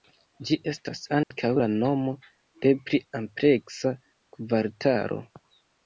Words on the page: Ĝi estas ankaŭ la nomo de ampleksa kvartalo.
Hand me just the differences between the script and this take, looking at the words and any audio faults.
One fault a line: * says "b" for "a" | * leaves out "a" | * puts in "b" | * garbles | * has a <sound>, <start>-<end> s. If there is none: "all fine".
* has a dropout, 1.2-1.3 s
* puts in "pli"